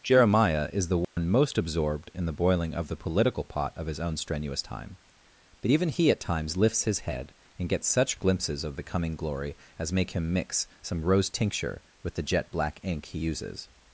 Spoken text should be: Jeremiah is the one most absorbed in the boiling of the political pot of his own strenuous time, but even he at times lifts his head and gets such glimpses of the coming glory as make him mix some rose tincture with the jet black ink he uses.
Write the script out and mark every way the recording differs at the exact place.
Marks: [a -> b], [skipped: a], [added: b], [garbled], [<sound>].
Jeremiah is the one [dropout] most absorbed in the boiling of the political pot of his own strenuous time, but even he at times lifts his head and gets such glimpses of the coming glory as make him mix some rose tincture with the jet black ink he uses.